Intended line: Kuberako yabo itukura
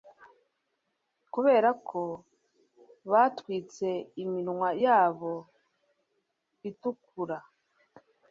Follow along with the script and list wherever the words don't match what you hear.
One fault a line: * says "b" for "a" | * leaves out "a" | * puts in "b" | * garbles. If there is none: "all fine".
* puts in "batwitse iminwa"